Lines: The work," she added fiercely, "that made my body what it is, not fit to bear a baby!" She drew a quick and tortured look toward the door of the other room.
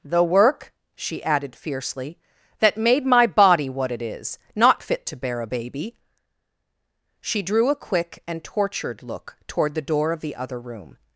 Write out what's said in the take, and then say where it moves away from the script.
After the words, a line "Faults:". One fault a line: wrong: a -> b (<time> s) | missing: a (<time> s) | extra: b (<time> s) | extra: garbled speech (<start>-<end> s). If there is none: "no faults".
The work," she added fiercely, "that made my body what it is, not fit to bear a baby!" She drew a quick and tortured look toward the door of the other room.
Faults:
no faults